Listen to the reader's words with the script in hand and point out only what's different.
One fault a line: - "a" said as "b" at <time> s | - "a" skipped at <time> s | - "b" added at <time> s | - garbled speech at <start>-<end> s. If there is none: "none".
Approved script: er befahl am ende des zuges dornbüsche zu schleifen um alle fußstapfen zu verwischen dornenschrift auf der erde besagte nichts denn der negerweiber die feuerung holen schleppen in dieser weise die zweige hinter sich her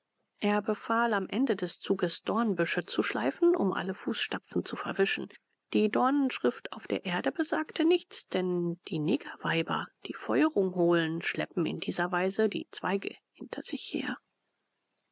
- "die" added at 5.7 s
- "der" said as "die" at 8.9 s